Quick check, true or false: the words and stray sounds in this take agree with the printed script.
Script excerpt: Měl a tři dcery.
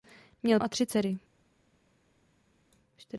true